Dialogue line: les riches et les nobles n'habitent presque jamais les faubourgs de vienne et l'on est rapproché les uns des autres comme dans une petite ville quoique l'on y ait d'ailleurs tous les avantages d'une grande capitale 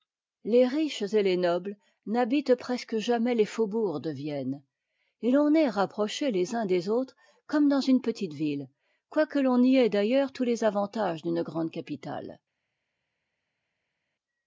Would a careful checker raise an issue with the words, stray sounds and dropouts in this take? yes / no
no